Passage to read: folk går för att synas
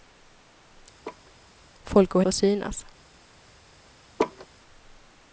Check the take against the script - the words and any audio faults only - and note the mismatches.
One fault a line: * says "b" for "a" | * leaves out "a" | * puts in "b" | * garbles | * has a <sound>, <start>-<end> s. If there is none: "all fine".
* has a laugh, 1.0-1.3 s
* has a laugh, 4.2-4.5 s